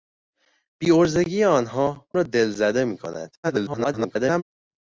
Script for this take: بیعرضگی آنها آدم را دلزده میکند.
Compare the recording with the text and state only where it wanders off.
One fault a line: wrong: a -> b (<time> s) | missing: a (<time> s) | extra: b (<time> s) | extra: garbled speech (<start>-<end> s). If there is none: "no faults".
missing: آدم (2.1 s)
extra: garbled speech (3.4-4.4 s)